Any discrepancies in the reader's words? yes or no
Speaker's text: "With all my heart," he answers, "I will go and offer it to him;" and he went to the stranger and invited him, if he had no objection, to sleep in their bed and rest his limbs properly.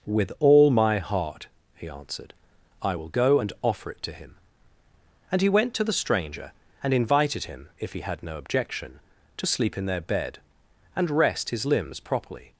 yes